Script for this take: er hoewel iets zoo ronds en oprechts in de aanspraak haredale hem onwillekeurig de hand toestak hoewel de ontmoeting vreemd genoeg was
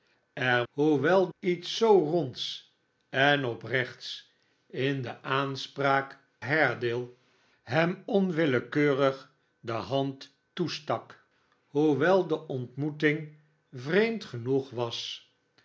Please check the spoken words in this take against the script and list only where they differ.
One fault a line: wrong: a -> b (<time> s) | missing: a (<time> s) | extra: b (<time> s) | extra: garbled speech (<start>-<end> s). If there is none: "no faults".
no faults